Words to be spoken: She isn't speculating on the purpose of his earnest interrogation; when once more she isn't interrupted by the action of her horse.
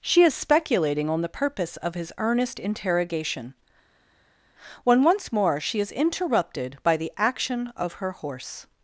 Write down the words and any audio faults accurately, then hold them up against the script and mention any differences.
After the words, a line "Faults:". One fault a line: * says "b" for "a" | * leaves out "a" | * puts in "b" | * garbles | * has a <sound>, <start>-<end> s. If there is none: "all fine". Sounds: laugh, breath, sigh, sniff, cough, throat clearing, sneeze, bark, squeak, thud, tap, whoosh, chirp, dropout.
She is speculating on the purpose of his earnest interrogation; when once more she is interrupted by the action of her horse.
Faults:
* says "is" for "isn't"
* says "is" for "isn't"